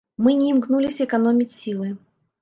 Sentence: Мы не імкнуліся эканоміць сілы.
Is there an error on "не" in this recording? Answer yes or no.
no